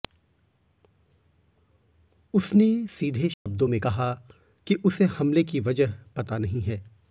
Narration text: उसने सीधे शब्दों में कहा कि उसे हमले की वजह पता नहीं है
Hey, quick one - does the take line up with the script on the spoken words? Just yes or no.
yes